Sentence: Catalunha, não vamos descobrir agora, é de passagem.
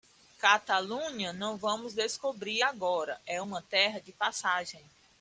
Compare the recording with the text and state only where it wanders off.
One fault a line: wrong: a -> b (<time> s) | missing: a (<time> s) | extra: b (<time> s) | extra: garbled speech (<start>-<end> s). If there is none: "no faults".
extra: uma terra (3.4 s)